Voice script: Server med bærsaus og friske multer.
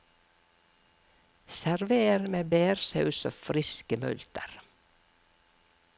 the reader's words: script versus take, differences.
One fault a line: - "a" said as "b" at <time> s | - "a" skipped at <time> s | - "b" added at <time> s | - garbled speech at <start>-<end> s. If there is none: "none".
none